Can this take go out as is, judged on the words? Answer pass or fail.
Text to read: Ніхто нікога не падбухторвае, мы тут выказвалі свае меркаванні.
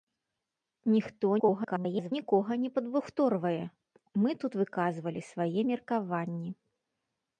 fail